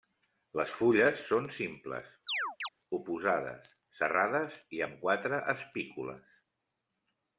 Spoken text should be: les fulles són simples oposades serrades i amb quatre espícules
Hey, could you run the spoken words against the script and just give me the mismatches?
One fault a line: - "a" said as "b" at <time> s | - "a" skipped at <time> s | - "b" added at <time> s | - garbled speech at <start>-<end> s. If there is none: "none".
none